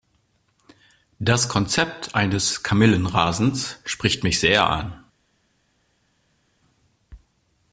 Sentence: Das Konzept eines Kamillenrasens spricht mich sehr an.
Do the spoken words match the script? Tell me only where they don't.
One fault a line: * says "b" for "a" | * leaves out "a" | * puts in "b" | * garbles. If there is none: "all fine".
all fine